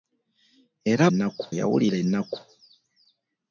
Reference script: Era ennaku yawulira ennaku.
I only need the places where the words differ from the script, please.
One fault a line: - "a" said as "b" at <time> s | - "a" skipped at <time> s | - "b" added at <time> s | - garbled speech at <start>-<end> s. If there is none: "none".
none